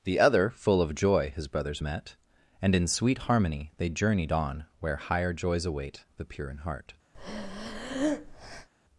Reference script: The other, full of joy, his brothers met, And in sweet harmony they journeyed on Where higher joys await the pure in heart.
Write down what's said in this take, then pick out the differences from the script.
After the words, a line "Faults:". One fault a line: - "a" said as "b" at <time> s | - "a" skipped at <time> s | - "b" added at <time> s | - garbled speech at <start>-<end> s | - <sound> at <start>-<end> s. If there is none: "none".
The other, full of joy, his brothers met, And in sweet harmony they journeyed on Where higher joys await the pure in heart.
Faults:
- breath at 7.1-8.7 s